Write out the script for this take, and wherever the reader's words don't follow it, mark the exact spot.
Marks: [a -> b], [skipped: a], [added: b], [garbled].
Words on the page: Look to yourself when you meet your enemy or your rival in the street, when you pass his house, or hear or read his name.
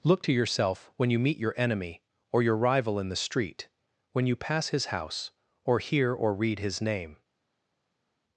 Look to yourself when you meet your enemy or your rival in the street, when you pass his house, or hear or read his name.